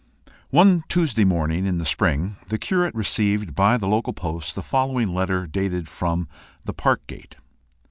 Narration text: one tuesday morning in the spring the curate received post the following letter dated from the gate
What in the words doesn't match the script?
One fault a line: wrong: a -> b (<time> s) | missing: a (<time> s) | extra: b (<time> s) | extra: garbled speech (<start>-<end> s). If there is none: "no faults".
extra: by the local (3.5 s)
extra: park (6.7 s)